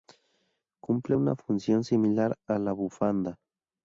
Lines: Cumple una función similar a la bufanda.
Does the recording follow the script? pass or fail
pass